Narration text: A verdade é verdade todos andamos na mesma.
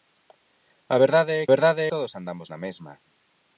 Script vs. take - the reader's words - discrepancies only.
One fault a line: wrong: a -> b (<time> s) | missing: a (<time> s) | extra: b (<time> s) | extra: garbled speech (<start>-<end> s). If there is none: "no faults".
no faults